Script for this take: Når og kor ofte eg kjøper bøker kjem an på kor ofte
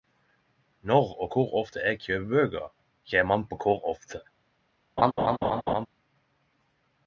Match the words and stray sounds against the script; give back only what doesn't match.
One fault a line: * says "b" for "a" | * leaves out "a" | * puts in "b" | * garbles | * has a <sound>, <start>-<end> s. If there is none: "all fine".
* has a laugh, 5.0-5.9 s